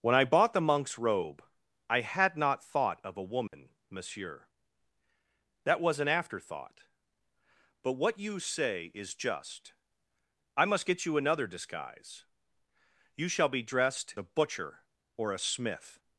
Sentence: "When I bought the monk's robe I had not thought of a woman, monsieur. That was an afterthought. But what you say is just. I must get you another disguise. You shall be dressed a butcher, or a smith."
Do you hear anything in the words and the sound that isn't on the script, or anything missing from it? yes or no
yes